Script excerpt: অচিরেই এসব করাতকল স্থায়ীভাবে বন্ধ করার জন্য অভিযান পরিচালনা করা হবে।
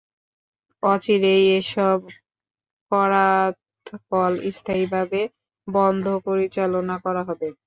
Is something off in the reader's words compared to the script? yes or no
yes